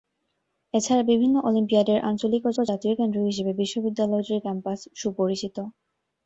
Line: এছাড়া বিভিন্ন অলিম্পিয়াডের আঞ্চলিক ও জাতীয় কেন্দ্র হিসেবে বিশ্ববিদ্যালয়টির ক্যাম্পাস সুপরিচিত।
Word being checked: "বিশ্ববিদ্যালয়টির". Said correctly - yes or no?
yes